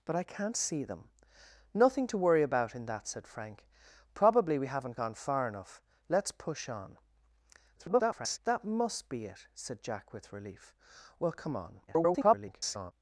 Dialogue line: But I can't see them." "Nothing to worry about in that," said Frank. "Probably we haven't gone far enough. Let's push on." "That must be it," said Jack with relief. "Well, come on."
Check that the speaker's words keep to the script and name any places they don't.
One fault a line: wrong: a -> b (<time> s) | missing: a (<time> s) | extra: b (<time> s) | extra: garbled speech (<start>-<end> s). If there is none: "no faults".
extra: garbled speech (7.8-8.4 s)
extra: garbled speech (11.9-12.9 s)